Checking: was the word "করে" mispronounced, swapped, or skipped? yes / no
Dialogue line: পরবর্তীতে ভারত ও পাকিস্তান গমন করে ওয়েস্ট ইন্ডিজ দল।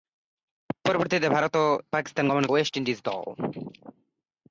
yes